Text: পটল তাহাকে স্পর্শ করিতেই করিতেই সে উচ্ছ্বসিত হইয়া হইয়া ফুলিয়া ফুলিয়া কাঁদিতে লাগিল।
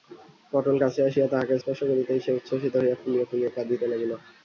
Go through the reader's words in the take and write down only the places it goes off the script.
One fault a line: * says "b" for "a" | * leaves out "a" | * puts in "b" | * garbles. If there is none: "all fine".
* puts in "কাছে আসিয়া"
* leaves out "করিতেই"
* leaves out "হইয়া"